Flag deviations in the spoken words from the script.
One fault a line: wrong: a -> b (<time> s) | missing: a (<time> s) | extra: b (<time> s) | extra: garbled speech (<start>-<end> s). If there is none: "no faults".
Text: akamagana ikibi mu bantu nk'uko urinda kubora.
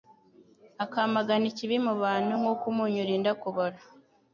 extra: umunyu (2.7 s)